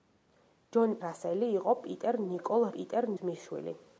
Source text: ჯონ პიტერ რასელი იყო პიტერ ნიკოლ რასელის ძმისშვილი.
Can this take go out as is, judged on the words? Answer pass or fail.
fail